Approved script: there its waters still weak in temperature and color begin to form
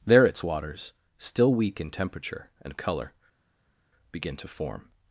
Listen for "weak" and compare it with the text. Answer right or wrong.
right